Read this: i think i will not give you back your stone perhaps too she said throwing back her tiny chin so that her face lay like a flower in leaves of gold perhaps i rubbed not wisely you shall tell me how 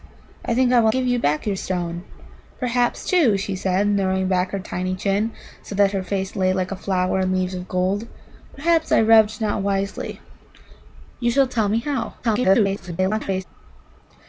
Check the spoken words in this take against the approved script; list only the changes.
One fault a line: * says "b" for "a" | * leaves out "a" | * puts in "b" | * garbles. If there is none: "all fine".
* leaves out "not"
* garbles